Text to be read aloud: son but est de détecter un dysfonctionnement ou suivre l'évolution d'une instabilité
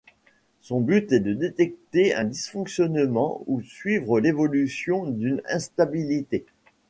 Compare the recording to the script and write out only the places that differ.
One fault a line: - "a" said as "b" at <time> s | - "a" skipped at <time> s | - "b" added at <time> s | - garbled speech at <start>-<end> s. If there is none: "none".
none